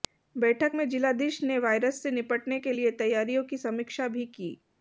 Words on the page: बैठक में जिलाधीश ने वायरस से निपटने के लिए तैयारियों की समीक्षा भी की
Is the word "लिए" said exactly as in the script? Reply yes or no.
yes